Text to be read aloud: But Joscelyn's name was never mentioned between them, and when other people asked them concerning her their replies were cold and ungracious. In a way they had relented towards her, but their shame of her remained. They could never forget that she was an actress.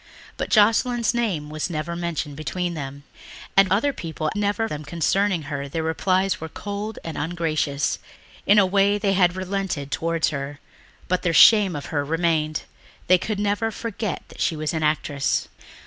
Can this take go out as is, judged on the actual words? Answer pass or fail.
fail